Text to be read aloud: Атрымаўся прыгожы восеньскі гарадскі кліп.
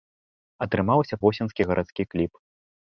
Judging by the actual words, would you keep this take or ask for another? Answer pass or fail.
fail